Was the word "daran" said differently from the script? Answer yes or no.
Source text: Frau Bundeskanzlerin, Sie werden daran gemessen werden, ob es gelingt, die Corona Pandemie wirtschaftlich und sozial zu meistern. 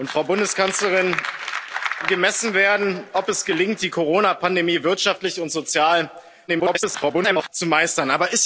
yes